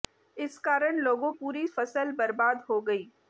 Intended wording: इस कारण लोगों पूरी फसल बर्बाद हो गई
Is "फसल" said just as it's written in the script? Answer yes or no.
yes